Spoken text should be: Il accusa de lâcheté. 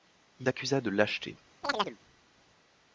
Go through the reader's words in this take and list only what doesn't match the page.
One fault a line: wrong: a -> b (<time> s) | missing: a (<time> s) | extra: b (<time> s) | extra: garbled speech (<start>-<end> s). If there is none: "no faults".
no faults